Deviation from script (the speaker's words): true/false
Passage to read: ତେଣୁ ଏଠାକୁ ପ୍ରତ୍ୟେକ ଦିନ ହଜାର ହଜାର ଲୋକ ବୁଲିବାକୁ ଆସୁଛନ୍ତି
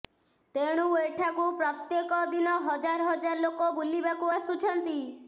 false